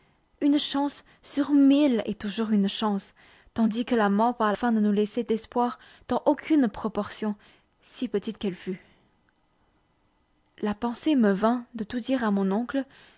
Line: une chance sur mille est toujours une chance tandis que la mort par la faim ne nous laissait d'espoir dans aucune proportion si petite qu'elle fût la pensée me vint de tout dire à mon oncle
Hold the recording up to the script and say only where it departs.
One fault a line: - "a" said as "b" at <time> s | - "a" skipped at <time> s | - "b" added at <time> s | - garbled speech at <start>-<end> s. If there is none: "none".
- "la" skipped at 4.5 s